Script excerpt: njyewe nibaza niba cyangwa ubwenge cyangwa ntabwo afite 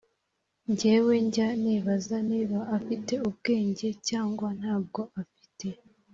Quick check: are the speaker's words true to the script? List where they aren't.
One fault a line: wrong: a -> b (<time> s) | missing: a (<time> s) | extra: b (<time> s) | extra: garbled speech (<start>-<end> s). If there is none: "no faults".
extra: njya (1.2 s)
wrong: cyangwa -> afite (2.8 s)